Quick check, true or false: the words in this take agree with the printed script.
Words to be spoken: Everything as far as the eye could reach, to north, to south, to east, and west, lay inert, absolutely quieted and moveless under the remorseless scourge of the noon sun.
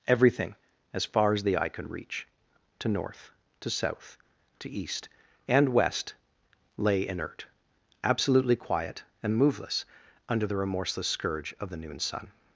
false